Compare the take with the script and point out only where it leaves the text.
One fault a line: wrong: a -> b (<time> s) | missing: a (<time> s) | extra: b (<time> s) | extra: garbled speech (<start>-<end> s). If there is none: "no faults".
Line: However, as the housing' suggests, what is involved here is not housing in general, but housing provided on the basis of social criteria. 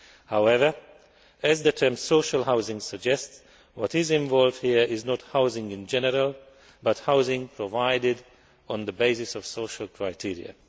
extra: term social (1.7 s)